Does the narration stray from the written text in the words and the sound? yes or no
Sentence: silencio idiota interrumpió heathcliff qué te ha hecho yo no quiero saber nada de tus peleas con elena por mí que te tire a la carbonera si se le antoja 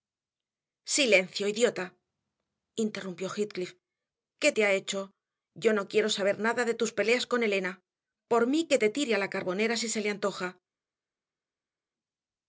no